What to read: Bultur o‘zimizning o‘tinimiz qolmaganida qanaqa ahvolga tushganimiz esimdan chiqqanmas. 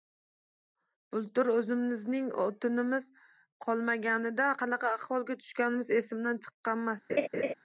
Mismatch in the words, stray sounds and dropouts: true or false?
true